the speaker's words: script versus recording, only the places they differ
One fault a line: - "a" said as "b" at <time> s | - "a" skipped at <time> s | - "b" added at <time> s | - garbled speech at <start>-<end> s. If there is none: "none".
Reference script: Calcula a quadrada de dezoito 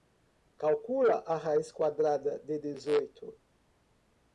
- "raiz" added at 1.4 s